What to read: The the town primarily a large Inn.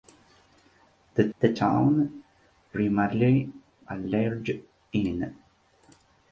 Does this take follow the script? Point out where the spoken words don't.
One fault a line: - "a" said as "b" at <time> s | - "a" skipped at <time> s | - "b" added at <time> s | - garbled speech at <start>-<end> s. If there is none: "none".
none